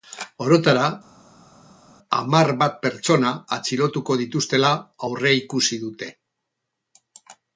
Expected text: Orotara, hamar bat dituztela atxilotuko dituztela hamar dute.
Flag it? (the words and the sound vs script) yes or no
yes